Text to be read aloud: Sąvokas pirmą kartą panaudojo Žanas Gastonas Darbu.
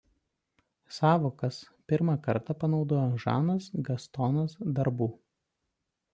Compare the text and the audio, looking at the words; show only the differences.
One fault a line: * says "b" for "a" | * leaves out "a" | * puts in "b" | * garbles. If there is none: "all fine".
all fine